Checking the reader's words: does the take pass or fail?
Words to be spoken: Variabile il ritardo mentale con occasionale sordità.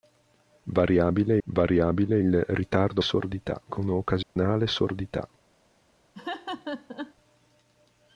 fail